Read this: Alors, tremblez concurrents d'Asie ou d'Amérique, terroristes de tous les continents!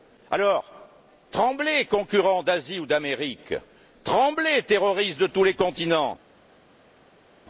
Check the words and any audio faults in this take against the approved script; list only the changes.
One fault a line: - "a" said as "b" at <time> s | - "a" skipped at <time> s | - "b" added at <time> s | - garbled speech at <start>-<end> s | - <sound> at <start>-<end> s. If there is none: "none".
- "tremblez" added at 4.0 s